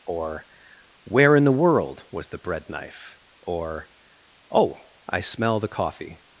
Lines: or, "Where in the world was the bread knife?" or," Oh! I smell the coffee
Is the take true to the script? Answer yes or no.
yes